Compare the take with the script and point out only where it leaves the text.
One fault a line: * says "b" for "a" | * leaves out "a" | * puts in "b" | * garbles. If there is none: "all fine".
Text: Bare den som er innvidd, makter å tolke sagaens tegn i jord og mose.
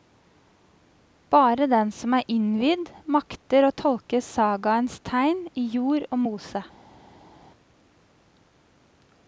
all fine